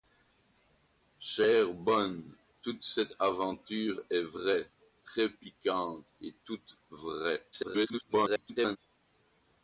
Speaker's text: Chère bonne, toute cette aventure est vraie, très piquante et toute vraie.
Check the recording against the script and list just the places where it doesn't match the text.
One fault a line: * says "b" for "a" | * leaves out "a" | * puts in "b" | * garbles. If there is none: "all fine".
* garbles